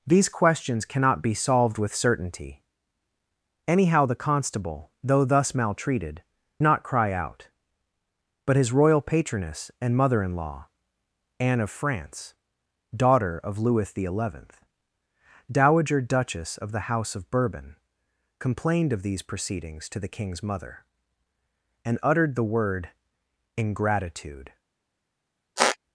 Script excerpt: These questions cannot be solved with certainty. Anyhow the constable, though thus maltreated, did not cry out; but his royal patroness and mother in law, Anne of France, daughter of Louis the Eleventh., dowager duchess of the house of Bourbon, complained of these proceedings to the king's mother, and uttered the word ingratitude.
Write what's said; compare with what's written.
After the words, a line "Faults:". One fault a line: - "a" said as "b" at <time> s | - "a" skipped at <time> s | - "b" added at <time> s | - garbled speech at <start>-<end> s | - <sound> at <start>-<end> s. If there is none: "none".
These questions cannot be solved with certainty. Anyhow the constable, though thus maltreated, not cry out; but his royal patroness and mother in law, Anne of France, daughter of Louis the Eleventh., dowager duchess of the house of Bourbon, complained of these proceedings to the king's mother, and uttered the word ingratitude.
Faults:
- "did" skipped at 6.2 s
- squeak at 25.6-25.8 s